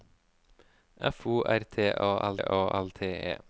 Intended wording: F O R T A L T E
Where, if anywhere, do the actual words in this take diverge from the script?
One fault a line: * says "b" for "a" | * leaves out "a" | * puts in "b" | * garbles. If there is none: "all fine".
* puts in "A L"